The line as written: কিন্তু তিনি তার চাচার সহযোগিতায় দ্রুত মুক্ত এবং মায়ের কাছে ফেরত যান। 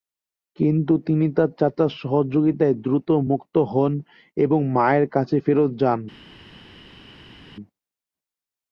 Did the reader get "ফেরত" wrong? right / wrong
right